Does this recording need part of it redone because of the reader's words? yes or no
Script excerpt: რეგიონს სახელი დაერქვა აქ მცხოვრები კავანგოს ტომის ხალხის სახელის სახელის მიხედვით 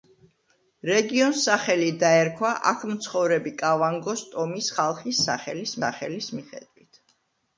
no